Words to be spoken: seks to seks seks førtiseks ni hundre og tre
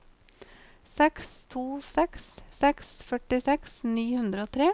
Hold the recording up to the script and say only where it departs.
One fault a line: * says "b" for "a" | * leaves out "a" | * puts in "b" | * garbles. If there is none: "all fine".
all fine